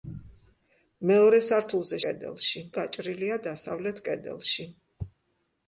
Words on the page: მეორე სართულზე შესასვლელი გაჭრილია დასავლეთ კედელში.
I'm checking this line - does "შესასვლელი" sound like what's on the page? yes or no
no